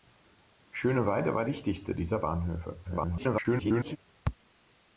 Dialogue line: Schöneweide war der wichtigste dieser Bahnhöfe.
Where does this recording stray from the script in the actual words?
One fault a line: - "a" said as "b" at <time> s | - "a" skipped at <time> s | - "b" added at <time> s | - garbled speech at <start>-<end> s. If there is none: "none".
- "der" skipped at 1.4 s
- garbled speech at 2.8-4.0 s